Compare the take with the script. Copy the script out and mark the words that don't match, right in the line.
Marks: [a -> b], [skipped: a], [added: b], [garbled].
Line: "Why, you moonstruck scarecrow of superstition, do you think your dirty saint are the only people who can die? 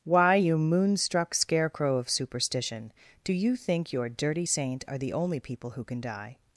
"Why, you moonstruck scarecrow of superstition, do you think your dirty saint are the only people who can die?